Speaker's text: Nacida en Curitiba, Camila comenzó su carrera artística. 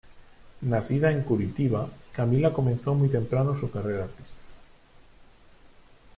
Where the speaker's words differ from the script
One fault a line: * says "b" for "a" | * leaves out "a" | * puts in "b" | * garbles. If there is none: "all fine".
* puts in "muy temprano"